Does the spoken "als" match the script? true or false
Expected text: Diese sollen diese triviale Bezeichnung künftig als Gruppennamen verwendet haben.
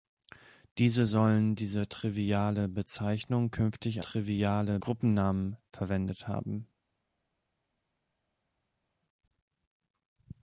false